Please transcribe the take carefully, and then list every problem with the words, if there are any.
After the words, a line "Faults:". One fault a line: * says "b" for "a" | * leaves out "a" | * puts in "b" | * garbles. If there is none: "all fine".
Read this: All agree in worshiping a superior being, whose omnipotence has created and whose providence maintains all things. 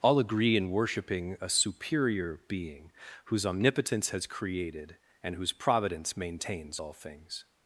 All agree in worshiping a superior being, whose omnipotence has created and whose providence maintains all things.
Faults:
all fine